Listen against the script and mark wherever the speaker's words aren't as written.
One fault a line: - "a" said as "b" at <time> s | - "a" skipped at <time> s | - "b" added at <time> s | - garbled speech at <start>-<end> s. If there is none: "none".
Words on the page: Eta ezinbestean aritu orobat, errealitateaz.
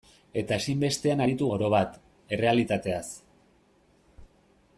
none